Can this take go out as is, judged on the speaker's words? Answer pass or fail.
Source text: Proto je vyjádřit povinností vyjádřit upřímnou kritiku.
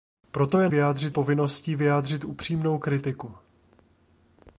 pass